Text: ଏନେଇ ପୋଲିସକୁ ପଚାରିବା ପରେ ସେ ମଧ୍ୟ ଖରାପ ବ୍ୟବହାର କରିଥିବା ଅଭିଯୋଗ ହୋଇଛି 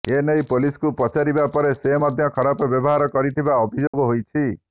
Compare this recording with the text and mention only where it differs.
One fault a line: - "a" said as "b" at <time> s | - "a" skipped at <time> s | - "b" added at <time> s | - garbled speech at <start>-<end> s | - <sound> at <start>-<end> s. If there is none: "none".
- dropout at 3.9-3.9 s